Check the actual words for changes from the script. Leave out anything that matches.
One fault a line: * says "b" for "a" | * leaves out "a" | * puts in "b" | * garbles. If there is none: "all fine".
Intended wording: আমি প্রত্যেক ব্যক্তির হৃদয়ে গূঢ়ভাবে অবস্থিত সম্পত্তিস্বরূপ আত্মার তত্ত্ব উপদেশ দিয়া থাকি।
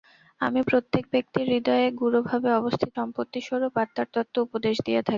all fine